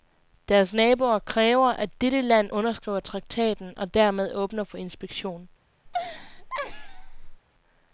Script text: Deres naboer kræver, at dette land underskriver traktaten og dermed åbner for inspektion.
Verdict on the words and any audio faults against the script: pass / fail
fail